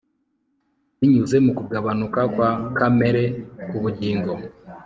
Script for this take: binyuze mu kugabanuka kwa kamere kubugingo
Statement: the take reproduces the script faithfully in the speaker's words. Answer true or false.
true